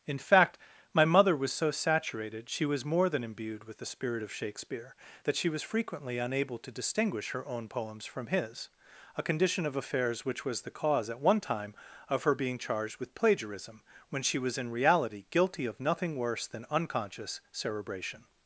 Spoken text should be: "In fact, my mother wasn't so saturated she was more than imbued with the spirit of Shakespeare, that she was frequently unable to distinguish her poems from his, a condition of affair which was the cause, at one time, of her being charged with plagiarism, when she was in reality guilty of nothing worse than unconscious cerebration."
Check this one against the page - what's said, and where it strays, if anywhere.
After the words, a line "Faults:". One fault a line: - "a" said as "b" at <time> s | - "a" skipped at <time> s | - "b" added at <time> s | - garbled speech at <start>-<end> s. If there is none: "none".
"In fact, my mother was so saturated she was more than imbued with the spirit of Shakespeare, that she was frequently unable to distinguish her own poems from his, a condition of affairs which was the cause, at one time, of her being charged with plagiarism, when she was in reality guilty of nothing worse than unconscious cerebration."
Faults:
- "wasn't" said as "was" at 1.4 s
- "own" added at 7.5 s
- "affair" said as "affairs" at 9.7 s